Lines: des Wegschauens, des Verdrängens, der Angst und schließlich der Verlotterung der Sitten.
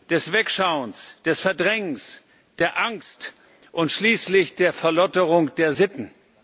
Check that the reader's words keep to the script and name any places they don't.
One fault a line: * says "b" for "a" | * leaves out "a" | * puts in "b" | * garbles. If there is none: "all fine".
all fine